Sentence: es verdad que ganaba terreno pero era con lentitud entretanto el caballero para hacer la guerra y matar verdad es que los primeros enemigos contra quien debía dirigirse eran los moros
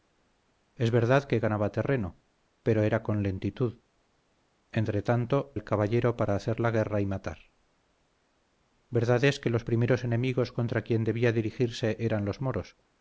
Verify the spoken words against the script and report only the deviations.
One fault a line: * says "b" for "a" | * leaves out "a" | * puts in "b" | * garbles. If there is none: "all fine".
all fine